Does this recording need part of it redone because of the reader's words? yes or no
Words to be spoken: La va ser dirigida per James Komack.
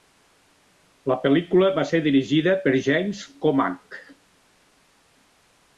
yes